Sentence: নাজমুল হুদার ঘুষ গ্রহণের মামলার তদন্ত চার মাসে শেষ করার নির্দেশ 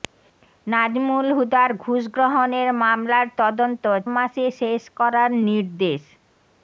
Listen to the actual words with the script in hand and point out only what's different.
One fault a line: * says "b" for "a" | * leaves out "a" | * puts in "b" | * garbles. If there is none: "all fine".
* leaves out "চার"